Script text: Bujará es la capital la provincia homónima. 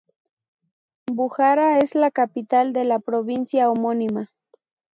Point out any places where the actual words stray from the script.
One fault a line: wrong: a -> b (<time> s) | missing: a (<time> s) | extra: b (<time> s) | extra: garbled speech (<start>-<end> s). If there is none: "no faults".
extra: de (2.7 s)